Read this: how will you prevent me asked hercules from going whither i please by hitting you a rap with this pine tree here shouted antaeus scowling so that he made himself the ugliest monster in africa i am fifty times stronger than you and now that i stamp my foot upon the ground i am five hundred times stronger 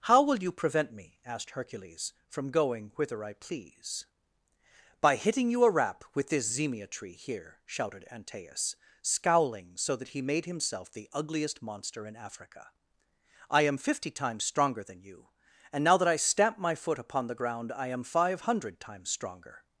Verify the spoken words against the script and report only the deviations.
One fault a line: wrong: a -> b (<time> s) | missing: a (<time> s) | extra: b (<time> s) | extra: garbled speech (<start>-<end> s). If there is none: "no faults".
wrong: pine -> zemia (6.5 s)